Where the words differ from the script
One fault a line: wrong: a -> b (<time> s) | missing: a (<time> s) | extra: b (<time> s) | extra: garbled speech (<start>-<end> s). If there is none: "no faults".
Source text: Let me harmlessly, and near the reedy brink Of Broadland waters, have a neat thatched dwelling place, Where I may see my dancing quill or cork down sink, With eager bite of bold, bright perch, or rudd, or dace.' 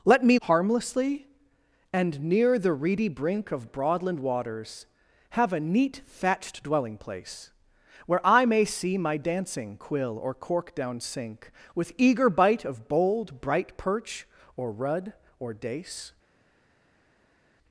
no faults